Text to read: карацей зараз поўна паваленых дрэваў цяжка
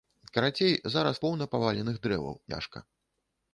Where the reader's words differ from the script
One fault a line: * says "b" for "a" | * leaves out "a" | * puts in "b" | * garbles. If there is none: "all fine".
all fine